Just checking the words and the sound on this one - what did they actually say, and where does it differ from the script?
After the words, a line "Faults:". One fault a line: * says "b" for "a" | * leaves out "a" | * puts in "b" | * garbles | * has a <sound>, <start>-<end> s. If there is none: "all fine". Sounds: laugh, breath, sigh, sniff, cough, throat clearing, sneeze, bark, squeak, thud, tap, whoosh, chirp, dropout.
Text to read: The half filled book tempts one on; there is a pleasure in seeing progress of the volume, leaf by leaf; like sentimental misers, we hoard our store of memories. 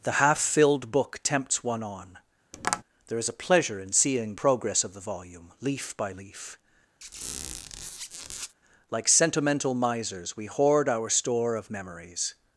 The half filled book tempts one on; there is a pleasure in seeing progress of the volume, leaf by leaf; like sentimental misers, we hoard our store of memories.
Faults:
* has a tap, 2.5-2.8 s
* has a squeak, 7.0-8.5 s